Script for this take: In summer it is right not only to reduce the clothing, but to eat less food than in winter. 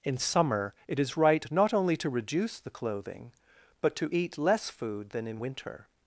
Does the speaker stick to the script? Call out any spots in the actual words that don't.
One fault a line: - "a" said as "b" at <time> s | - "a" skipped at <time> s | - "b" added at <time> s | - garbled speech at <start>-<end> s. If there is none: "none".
none